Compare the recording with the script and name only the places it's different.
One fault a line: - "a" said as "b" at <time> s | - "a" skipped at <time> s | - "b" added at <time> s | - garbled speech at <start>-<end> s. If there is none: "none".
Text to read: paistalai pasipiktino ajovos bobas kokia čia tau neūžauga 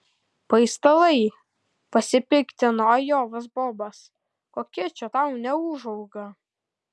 none